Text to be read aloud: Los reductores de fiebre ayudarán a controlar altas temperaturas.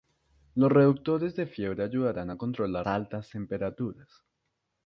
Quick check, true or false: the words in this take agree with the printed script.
true